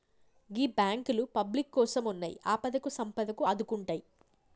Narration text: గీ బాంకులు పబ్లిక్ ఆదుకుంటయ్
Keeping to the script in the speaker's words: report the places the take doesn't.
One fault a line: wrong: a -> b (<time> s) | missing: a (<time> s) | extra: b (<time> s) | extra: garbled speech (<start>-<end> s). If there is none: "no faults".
extra: కోసమున్నయ్ ఆపదకు సంపదకు (1.7 s)